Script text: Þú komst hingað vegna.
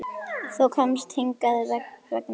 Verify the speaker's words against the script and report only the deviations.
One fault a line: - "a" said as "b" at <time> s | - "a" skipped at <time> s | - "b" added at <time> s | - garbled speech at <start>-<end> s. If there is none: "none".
none